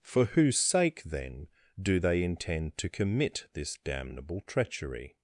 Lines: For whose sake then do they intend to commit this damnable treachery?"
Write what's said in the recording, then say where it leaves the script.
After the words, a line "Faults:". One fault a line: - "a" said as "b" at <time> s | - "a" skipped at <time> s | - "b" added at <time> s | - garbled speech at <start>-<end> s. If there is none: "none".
For whose sake then do they intend to commit this damnable treachery?"
Faults:
none